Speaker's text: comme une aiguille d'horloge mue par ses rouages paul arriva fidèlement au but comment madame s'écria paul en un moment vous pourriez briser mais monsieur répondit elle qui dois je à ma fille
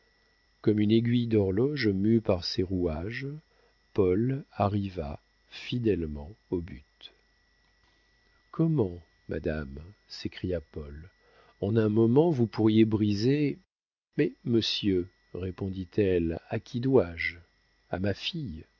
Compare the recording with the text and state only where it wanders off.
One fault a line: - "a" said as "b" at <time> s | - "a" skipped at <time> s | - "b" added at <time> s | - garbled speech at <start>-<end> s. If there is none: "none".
- "à" added at 16.5 s